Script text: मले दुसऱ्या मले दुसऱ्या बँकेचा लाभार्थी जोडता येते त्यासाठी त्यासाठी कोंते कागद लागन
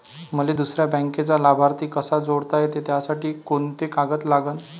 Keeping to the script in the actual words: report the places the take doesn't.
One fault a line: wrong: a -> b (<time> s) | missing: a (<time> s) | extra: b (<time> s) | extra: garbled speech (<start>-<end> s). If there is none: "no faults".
missing: मले दुसऱ्या (0.9 s)
extra: कसा (1.9 s)
missing: त्यासाठी (3.3 s)